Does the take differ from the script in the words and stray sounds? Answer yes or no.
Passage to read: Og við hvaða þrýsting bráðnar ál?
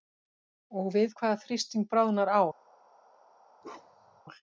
yes